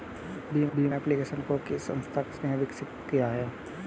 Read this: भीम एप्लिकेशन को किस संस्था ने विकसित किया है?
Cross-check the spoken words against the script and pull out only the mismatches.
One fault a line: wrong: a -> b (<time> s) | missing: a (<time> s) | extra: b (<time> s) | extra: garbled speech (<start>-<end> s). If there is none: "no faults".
extra: भीम (0.8 s)